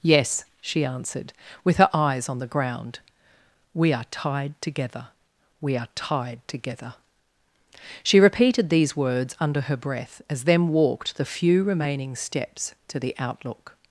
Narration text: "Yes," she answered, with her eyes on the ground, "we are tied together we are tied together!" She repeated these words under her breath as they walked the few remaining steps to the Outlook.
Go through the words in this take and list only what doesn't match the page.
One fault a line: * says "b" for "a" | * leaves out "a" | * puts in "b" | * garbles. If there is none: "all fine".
* says "them" for "they"